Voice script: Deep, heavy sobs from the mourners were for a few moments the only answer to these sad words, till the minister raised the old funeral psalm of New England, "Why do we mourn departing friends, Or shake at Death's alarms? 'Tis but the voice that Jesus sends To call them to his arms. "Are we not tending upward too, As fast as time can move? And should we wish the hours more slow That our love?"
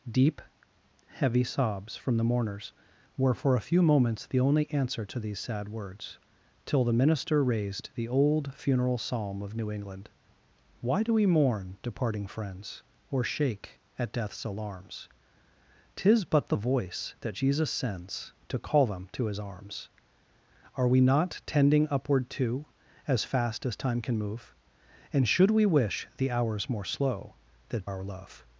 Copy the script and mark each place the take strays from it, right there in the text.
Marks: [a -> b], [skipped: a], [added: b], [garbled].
Deep, heavy sobs from the mourners were for a few moments the only answer to these sad words, till the minister raised the old funeral psalm of New England, "Why do we mourn departing friends, Or shake at Death's alarms? 'Tis but the voice that Jesus sends To call them to his arms. "Are we not tending upward too, As fast as time can move? And should we wish the hours more slow That our love?"